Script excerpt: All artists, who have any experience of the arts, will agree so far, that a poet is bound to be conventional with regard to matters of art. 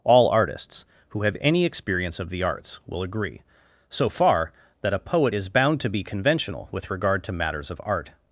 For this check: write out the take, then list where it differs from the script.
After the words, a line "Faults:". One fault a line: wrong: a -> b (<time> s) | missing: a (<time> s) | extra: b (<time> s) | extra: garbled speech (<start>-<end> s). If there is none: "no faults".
All artists, who have any experience of the arts, will agree so far, that a poet is bound to be conventional with regard to matters of art.
Faults:
no faults